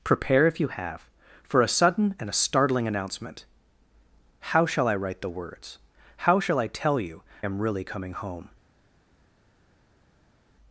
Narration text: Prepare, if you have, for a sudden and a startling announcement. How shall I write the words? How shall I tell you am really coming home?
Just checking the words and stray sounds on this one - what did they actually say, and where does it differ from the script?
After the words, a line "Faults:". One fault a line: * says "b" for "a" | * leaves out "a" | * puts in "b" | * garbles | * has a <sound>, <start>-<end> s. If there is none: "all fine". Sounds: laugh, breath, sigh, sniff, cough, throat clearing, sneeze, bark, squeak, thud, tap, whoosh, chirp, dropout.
Prepare, if you have, for a sudden and a startling announcement. How shall I write the words? How shall I tell you am really coming home?
Faults:
all fine